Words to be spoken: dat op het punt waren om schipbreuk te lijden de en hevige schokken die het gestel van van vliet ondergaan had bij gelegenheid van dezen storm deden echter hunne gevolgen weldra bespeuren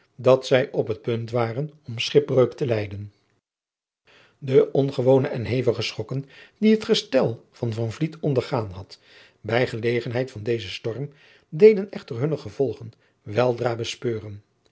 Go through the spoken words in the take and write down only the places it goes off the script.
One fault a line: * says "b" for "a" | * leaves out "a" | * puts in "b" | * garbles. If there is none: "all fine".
* puts in "zij"
* puts in "ongewone"